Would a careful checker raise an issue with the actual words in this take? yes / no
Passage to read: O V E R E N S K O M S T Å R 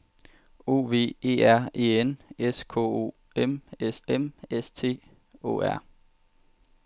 yes